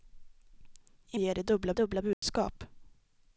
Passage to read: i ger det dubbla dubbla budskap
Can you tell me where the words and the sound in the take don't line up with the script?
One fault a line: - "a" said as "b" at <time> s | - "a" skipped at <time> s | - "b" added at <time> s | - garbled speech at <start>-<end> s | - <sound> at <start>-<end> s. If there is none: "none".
- dropout at 2.1-2.2 s